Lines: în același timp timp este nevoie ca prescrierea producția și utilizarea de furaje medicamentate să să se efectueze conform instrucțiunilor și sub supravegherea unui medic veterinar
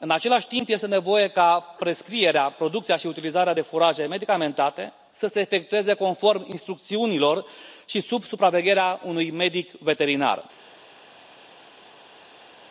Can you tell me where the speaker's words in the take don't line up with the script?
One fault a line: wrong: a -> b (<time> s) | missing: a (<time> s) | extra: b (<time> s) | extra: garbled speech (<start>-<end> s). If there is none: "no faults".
missing: timp (0.7 s)
missing: să (5.3 s)